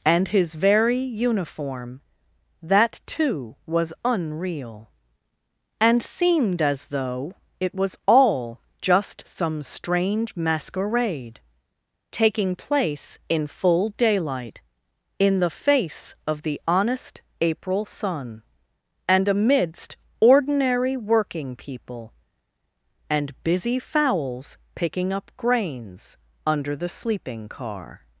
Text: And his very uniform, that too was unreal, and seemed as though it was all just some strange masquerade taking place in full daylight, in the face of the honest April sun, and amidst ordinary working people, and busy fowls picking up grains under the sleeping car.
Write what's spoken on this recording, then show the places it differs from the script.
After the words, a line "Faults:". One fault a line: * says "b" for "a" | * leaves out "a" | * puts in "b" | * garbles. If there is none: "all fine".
And his very uniform, that too was unreal, and seemed as though it was all just some strange masquerade taking place in full daylight, in the face of the honest April sun, and amidst ordinary working people, and busy fowls picking up grains under the sleeping car.
Faults:
all fine